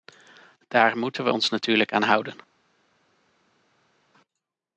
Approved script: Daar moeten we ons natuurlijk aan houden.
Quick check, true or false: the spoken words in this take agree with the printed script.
true